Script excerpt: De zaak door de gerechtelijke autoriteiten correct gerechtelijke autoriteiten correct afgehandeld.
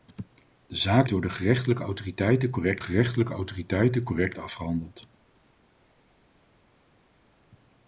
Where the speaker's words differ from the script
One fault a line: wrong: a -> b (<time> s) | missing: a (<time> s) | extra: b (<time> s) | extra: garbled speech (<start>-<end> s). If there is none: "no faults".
no faults